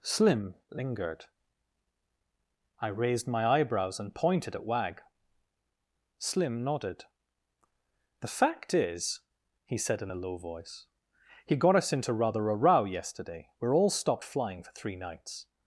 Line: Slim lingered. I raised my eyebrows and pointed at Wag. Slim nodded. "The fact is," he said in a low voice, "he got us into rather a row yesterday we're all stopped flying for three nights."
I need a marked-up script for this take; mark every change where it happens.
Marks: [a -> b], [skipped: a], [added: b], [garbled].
Slim lingered. I raised my eyebrows and pointed at Wag. Slim nodded. "The fact is," he said in a low voice, "he got us into rather a row yesterday we're all stopped flying for three nights."